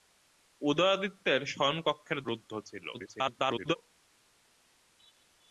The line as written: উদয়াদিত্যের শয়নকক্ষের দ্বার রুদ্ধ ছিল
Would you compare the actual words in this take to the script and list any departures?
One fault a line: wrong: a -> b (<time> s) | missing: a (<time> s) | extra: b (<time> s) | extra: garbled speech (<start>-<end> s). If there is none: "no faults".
missing: দ্বার (2.2 s)
extra: garbled speech (2.9-3.8 s)